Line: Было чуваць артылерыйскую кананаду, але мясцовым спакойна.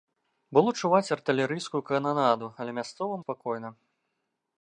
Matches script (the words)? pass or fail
pass